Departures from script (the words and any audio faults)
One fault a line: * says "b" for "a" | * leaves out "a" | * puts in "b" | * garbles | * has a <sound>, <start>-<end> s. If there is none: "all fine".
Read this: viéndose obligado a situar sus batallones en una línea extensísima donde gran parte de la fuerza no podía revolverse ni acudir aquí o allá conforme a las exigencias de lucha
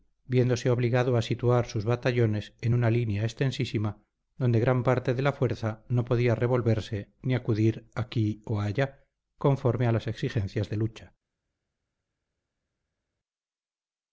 all fine